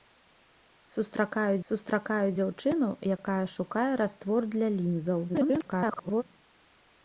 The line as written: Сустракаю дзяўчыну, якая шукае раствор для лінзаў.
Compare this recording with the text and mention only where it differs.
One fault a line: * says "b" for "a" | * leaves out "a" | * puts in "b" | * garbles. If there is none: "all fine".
* puts in "сустракаю"
* garbles